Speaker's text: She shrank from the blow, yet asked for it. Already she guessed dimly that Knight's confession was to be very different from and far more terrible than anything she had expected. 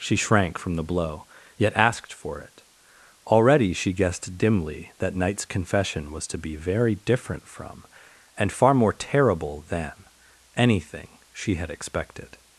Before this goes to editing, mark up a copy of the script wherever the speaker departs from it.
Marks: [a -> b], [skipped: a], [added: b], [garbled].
She shrank from the blow, yet asked for it. Already she guessed dimly that Knight's confession was to be very different from and far more terrible than anything she had expected.